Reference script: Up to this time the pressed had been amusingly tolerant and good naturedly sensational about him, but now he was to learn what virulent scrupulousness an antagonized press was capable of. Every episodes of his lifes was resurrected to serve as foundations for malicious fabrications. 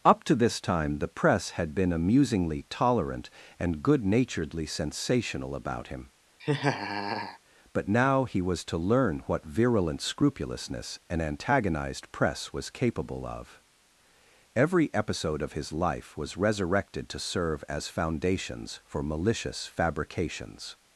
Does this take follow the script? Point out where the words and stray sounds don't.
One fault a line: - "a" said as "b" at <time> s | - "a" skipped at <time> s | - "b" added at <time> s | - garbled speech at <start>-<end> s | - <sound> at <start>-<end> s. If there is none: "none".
- "pressed" said as "press" at 1.1 s
- laugh at 6.4-7.4 s
- "episodes" said as "episode" at 14.9 s
- "lifes" said as "life" at 15.7 s